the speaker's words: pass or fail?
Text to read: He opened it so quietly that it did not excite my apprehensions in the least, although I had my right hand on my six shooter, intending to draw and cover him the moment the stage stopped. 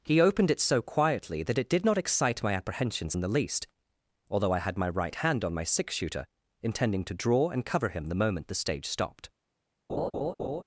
pass